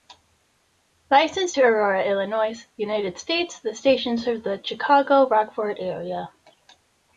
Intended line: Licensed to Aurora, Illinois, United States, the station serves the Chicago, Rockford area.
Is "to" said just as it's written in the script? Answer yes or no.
yes